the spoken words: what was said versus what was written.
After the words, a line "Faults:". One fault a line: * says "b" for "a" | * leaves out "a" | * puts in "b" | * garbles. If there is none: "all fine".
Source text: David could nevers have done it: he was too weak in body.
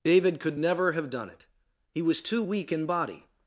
David could never have done it: he was too weak in body.
Faults:
* says "never" for "nevers"